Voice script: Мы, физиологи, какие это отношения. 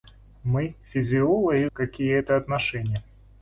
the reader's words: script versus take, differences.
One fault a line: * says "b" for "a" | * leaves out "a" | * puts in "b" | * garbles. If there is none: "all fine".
all fine